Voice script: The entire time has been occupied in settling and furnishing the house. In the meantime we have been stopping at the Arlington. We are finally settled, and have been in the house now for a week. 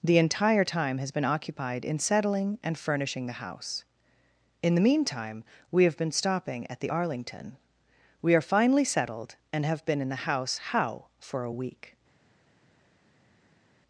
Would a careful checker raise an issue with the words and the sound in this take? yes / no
yes